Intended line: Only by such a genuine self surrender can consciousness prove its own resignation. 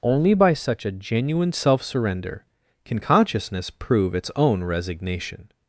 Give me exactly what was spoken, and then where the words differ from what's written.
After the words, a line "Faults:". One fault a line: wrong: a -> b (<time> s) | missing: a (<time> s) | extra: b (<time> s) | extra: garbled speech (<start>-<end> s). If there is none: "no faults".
Only by such a genuine self surrender can consciousness prove its own resignation.
Faults:
no faults